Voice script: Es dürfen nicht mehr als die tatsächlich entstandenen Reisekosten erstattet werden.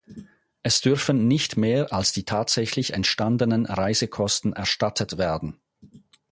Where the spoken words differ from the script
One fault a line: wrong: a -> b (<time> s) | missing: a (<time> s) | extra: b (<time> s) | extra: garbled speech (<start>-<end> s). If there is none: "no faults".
no faults